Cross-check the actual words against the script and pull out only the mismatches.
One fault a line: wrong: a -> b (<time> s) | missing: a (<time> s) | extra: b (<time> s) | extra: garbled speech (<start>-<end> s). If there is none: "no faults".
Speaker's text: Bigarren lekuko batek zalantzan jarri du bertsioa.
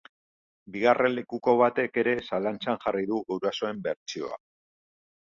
extra: ere (2.0 s)
extra: gurasoen (3.3 s)